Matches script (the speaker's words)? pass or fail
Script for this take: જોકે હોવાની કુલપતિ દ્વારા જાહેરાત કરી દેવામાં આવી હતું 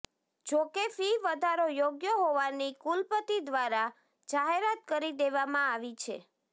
fail